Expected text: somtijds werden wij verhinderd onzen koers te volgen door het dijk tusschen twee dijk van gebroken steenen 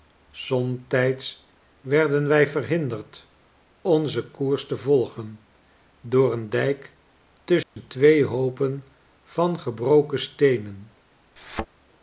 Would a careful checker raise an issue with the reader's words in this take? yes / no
yes